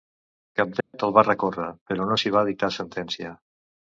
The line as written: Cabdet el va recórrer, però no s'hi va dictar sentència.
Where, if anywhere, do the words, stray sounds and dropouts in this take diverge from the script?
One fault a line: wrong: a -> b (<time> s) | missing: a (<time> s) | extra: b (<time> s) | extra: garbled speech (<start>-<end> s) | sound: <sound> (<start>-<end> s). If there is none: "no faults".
sound: dropout (0.8-0.9 s)